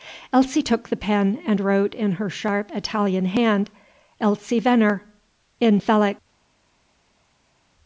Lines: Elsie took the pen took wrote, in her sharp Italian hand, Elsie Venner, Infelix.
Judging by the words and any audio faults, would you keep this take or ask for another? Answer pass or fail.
fail